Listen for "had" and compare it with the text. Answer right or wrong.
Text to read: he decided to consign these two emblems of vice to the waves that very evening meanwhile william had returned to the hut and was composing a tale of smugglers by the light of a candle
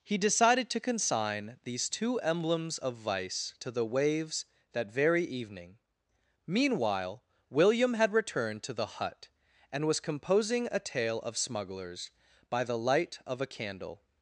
right